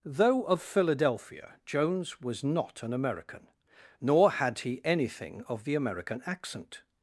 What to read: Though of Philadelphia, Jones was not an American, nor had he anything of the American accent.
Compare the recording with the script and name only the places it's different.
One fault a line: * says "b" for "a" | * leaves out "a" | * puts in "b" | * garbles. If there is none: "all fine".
all fine